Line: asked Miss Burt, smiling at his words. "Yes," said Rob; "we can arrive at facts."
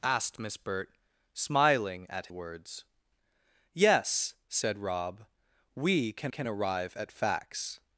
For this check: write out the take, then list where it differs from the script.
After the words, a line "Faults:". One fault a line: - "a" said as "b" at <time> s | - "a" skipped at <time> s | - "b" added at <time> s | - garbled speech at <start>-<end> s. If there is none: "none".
asked Miss Burt, smiling at words. "Yes," said Rob; "we can can arrive at facts."
Faults:
- "his" skipped at 2.3 s
- "can" added at 6.3 s